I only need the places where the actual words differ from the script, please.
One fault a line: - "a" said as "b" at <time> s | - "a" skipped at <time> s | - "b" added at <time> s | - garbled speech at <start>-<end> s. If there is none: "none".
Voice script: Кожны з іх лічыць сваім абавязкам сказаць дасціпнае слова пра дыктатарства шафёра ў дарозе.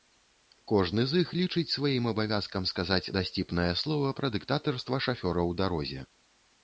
none